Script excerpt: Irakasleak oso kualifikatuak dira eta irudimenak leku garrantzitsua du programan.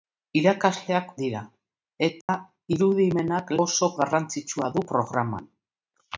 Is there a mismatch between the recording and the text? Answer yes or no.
yes